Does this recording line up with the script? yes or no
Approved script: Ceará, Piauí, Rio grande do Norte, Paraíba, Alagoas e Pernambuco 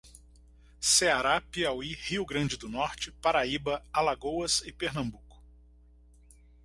yes